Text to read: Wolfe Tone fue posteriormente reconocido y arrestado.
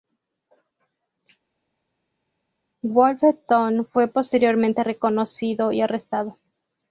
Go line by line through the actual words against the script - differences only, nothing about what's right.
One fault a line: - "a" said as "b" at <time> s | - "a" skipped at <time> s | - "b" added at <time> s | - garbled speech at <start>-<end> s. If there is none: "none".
none